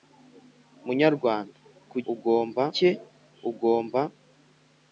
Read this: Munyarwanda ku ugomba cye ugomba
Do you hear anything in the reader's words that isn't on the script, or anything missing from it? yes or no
no